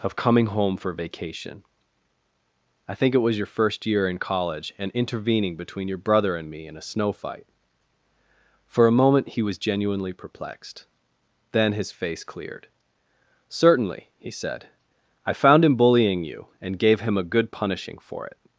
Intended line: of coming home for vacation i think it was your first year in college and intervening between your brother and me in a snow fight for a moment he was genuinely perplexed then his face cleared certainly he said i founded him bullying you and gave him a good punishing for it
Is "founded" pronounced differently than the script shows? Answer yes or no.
yes